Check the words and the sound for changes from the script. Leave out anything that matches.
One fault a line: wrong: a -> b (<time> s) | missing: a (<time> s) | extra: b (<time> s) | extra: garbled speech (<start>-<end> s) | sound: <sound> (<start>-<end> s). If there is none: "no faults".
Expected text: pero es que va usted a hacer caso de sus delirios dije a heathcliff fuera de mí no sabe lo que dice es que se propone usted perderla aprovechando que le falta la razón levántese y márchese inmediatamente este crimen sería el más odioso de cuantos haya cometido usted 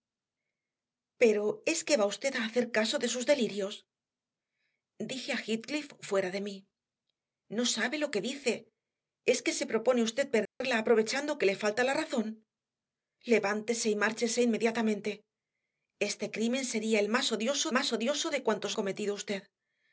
sound: dropout (10.5-10.6 s)
extra: más odioso (17.8 s)
missing: haya (18.8 s)